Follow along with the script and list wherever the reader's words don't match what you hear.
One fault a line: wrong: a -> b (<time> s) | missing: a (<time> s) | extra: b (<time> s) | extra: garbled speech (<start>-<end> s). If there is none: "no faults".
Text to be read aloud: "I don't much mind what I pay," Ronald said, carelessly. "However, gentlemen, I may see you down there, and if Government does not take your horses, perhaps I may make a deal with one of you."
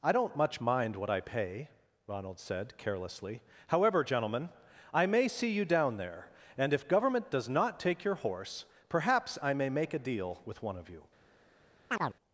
wrong: horses -> horse (8.1 s)